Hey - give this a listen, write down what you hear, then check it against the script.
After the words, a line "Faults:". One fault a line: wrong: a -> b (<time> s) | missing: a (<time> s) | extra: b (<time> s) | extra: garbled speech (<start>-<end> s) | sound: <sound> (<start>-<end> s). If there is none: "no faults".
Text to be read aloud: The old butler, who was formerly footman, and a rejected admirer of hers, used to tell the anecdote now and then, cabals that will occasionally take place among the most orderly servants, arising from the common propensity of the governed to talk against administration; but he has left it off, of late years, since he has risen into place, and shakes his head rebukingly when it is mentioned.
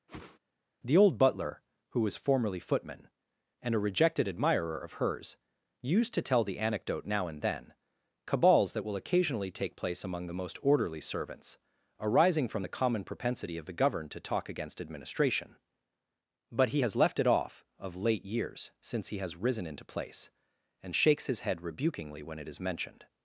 The old butler, who was formerly footman, and a rejected admirer of hers, used to tell the anecdote now and then, cabals that will occasionally take place among the most orderly servants, arising from the common propensity of the governed to talk against administration; but he has left it off, of late years, since he has risen into place, and shakes his head rebukingly when it is mentioned.
Faults:
sound: whoosh (0.1-0.4 s)